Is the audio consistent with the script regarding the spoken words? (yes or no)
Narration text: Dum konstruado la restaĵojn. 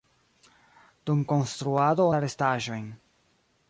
yes